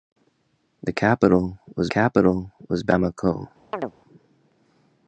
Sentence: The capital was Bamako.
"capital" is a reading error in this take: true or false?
false